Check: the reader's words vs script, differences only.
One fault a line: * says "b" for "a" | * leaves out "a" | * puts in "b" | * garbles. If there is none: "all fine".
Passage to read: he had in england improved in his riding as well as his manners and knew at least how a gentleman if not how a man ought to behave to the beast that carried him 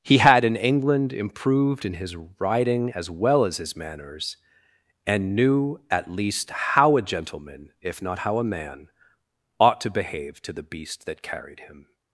all fine